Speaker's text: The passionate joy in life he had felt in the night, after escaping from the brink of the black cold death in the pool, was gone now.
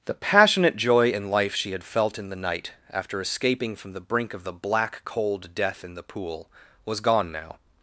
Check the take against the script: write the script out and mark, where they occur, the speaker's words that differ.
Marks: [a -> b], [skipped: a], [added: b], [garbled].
The passionate joy in life [he -> she] had felt in the night, after escaping from the brink of the black cold death in the pool, was gone now.